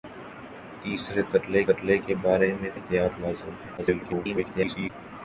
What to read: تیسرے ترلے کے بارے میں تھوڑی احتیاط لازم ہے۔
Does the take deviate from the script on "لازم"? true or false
false